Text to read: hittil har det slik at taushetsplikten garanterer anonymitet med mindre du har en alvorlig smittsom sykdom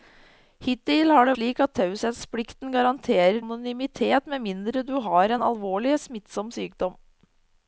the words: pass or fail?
pass